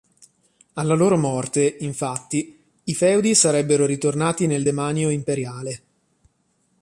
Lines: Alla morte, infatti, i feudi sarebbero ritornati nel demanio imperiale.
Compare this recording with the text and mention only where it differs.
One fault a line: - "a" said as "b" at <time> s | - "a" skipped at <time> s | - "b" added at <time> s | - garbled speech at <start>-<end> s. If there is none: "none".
- "loro" added at 0.9 s